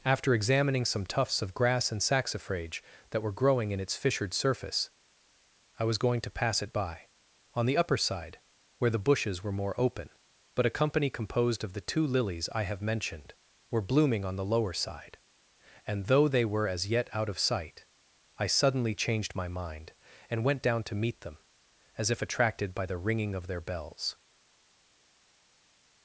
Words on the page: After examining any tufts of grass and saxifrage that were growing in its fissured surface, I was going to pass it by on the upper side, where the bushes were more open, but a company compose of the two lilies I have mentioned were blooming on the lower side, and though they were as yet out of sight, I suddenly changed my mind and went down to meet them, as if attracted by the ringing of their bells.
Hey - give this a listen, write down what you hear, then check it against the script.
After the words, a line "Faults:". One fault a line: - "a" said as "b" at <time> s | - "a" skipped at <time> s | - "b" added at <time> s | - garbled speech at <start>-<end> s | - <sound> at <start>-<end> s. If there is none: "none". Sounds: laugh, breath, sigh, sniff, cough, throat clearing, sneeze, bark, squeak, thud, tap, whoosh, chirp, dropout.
After examining some tufts of grass and saxifrage that were growing in its fissured surface, I was going to pass it by on the upper side, where the bushes were more open, but a company composed of the two lilies I have mentioned were blooming on the lower side, and though they were as yet out of sight, I suddenly changed my mind and went down to meet them, as if attracted by the ringing of their bells.
Faults:
- "any" said as "some" at 0.8 s
- "compose" said as "composed" at 11.1 s